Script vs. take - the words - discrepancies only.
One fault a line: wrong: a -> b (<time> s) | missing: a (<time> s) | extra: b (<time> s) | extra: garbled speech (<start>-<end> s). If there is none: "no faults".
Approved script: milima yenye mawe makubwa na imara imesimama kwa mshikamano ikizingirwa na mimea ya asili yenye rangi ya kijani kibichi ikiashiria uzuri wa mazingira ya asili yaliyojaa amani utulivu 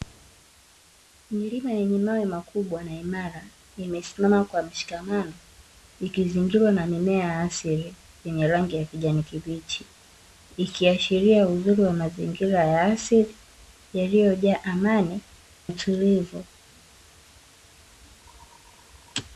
no faults